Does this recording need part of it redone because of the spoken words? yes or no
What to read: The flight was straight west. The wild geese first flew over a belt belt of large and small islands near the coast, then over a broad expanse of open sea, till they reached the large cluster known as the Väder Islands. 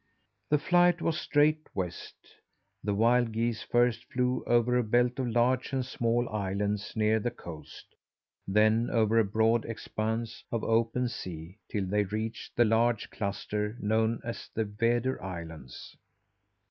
yes